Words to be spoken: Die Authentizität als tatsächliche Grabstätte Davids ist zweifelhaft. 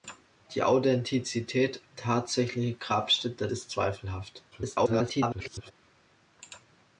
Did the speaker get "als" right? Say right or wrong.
wrong